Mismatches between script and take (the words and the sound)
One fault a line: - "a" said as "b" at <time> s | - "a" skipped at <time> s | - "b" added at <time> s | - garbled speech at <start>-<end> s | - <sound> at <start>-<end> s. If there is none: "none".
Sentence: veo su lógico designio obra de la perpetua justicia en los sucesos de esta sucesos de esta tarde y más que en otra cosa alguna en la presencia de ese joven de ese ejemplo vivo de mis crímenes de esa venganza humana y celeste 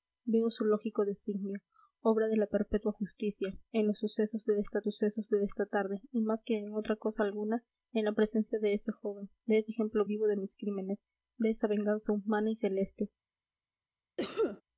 - cough at 14.2-14.6 s